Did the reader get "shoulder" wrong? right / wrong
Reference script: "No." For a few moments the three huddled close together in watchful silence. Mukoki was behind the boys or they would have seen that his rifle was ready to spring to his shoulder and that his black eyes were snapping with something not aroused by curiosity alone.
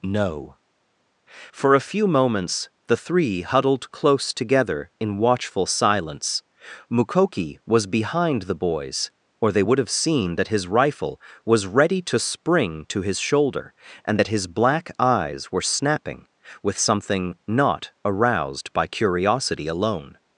right